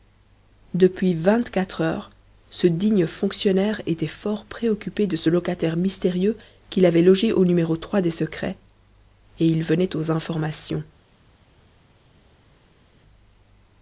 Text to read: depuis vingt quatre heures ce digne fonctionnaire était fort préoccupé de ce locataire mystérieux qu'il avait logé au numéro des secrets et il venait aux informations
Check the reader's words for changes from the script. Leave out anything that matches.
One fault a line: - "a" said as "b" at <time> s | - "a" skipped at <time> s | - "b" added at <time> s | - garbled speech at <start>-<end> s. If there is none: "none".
none